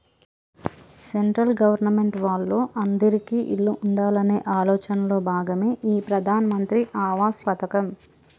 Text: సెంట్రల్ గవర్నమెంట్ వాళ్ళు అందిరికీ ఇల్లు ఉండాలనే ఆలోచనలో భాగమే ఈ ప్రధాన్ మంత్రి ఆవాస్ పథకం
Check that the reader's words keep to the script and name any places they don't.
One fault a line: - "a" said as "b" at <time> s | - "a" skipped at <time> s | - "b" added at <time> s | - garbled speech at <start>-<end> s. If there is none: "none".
none